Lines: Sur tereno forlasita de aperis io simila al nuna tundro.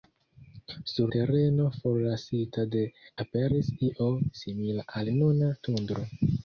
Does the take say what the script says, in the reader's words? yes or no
yes